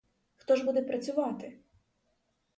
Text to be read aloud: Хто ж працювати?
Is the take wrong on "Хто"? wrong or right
right